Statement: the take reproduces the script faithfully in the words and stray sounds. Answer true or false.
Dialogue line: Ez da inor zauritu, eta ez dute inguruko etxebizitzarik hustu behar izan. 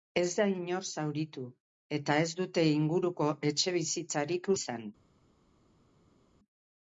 false